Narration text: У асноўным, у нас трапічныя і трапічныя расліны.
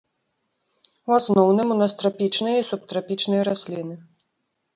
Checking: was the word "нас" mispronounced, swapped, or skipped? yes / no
no